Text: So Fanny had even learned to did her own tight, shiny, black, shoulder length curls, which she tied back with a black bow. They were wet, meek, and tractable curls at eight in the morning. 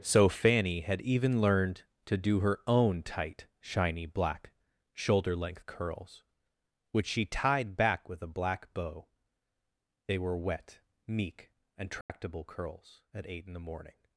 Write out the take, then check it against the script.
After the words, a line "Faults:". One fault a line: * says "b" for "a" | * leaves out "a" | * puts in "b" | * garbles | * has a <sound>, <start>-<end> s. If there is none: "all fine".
So Fanny had even learned to do her own tight, shiny, black, shoulder length curls, which she tied back with a black bow. They were wet, meek, and tractable curls at eight in the morning.
Faults:
* says "do" for "did"
* has a dropout, 12.0-12.1 s